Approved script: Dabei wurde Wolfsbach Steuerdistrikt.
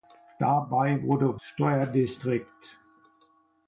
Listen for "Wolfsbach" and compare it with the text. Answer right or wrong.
wrong